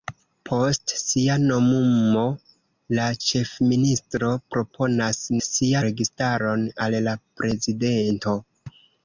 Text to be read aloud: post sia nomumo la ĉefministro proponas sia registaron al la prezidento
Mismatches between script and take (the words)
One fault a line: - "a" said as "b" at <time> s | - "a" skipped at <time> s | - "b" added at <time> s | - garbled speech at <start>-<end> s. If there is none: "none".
none